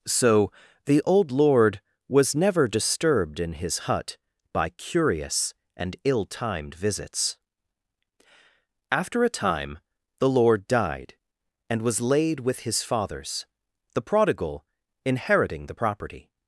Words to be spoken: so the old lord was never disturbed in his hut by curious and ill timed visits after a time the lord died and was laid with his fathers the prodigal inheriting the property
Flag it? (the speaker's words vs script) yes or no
no